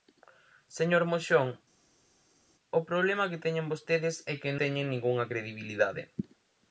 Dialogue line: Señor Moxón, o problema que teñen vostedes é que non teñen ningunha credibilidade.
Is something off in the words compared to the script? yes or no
yes